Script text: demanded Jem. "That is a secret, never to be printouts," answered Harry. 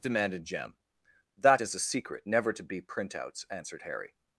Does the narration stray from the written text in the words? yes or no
no